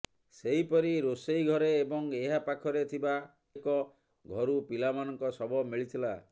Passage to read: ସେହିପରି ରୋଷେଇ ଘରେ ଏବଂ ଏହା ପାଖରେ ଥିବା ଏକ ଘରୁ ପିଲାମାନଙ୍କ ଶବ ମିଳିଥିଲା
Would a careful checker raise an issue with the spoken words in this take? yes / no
no